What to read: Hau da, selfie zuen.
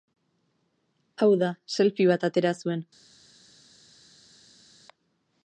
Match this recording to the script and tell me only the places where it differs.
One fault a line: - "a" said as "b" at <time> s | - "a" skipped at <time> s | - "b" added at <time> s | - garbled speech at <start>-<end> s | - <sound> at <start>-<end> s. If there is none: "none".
- "bat atera" added at 2.1 s